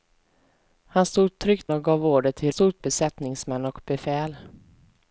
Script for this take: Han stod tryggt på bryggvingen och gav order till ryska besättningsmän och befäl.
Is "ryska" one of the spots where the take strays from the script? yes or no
yes